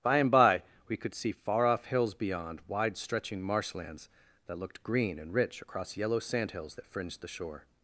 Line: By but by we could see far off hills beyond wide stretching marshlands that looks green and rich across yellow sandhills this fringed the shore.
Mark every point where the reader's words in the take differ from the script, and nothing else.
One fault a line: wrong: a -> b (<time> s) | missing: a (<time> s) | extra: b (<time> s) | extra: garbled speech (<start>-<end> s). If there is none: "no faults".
wrong: but -> and (0.2 s)
wrong: looks -> looked (4.6 s)
wrong: this -> that (6.7 s)